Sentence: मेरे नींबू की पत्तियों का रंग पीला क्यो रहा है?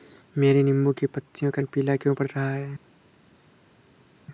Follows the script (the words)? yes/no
no